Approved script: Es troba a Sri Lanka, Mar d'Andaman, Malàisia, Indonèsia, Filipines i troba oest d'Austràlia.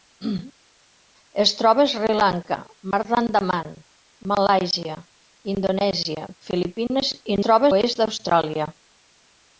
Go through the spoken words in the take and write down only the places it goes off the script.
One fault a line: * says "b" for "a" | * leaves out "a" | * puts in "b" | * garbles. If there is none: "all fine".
all fine